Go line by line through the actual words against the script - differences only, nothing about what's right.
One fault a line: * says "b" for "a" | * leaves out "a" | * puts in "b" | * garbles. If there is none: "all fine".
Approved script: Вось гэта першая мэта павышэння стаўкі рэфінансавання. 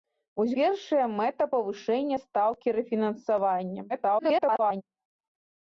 * leaves out "гэта"
* garbles